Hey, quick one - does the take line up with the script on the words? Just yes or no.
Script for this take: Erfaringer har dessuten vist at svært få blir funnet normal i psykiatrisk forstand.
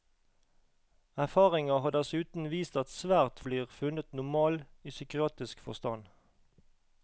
no